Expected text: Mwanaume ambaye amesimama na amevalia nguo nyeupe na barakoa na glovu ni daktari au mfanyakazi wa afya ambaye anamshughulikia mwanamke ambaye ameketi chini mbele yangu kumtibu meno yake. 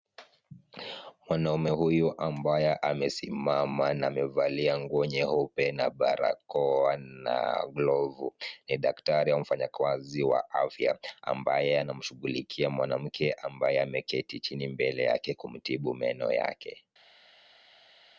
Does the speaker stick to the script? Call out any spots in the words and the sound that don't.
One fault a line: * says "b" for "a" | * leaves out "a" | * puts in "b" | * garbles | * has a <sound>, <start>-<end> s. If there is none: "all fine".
* puts in "huyu"
* says "yake" for "yangu"